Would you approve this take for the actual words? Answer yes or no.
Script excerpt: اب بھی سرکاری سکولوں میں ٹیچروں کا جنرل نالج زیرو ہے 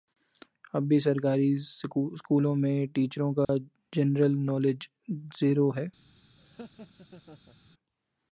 yes